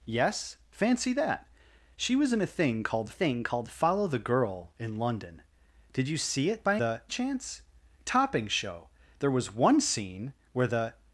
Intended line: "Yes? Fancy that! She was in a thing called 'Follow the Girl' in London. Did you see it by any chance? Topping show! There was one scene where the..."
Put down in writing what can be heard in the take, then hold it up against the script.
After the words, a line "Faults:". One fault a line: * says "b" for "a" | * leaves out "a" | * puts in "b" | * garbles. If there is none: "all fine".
"Yes? Fancy that! She was in a thing called thing called 'Follow the Girl' in London. Did you see it by the chance? Topping show! There was one scene where the..."
Faults:
* puts in "thing called"
* says "the" for "any"